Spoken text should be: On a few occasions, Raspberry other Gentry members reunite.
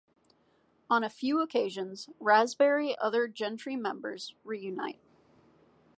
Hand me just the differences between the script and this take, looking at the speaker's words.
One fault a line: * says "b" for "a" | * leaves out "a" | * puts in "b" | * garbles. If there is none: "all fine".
all fine